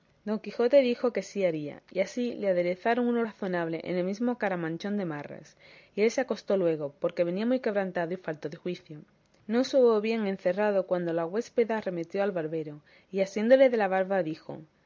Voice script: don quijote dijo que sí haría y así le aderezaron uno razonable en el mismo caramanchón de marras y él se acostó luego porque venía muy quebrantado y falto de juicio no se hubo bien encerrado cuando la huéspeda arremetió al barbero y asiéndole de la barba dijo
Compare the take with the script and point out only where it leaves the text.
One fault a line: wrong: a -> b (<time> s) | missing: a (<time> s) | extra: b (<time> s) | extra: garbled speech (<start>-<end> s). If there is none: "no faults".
no faults